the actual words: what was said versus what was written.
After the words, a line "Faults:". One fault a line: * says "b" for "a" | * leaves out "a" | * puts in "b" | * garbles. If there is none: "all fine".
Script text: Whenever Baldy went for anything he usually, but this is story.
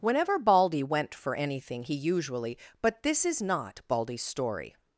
Whenever Baldy went for anything he usually, but this is not Baldy's story.
Faults:
* puts in "not Baldy's"